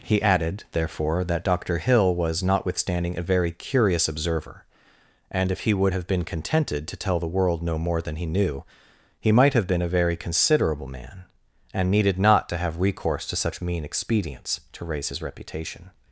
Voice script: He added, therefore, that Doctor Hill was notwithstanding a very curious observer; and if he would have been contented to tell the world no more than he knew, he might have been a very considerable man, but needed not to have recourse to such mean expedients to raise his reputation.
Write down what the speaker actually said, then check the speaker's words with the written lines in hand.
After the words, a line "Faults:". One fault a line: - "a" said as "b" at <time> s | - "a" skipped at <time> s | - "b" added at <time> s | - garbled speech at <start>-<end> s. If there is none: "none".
He added, therefore, that Doctor Hill was notwithstanding a very curious observer; and if he would have been contented to tell the world no more than he knew, he might have been a very considerable man, and needed not to have recourse to such mean expedients to raise his reputation.
Faults:
- "but" said as "and" at 11.7 s